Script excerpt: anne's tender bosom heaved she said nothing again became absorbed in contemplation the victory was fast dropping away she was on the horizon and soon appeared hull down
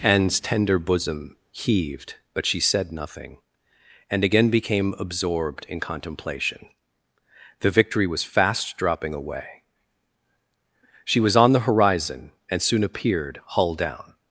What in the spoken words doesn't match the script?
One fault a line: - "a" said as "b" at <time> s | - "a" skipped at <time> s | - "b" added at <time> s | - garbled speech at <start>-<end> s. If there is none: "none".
- "but" added at 2.3 s
- "and" added at 4.1 s